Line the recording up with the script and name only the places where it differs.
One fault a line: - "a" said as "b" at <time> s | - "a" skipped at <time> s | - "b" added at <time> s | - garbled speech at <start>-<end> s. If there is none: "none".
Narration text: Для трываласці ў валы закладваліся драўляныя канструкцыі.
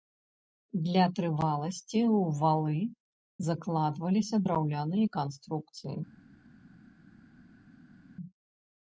none